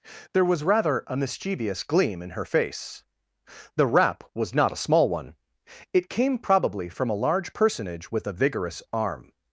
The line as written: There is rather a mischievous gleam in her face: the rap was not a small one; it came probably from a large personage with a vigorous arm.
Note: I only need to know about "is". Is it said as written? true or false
false